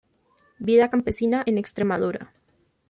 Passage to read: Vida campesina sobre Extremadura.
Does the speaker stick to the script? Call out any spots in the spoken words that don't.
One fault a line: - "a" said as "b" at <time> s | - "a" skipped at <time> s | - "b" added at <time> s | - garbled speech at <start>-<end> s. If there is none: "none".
- "sobre" said as "en" at 1.5 s